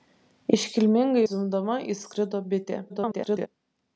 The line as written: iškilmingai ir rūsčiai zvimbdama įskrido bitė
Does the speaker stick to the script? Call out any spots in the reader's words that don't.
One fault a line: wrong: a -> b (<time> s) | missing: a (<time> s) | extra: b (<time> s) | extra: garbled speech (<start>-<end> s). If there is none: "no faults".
missing: ir rūsčiai (1.2 s)
extra: garbled speech (2.9-3.5 s)